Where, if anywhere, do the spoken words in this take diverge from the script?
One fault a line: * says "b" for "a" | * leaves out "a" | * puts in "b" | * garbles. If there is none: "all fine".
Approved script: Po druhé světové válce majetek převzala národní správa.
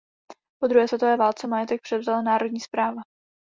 all fine